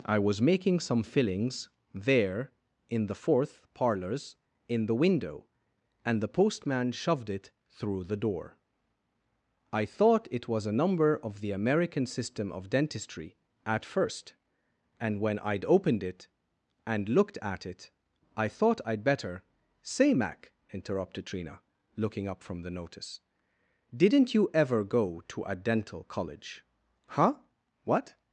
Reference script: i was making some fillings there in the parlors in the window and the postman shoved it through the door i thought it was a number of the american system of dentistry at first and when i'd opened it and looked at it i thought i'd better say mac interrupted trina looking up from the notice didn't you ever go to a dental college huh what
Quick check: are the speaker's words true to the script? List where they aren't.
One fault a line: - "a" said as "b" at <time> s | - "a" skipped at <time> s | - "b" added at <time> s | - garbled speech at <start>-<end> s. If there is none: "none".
- "fourth" added at 3.1 s